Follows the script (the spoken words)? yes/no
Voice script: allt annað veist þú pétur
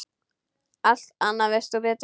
yes